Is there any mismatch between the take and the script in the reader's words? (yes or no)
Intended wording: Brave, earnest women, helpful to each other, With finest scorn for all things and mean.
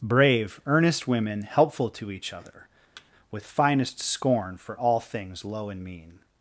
yes